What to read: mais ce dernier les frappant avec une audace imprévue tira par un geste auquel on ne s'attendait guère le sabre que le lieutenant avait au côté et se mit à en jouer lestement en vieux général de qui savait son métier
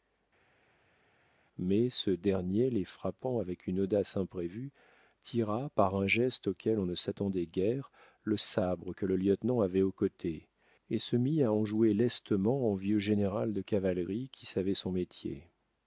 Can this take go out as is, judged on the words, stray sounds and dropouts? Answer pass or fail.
fail